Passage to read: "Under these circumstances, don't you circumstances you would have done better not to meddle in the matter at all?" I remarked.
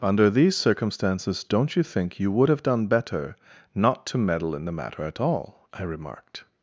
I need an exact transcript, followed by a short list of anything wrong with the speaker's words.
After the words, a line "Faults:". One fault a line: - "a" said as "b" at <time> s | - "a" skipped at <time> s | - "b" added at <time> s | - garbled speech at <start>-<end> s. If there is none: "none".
"Under these circumstances, don't you think you would have done better not to meddle in the matter at all?" I remarked.
Faults:
- "circumstances" said as "think" at 1.8 s